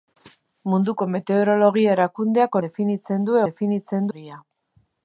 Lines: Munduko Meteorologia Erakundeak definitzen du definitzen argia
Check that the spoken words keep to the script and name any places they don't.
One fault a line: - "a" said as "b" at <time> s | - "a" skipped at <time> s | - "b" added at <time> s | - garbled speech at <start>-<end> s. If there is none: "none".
none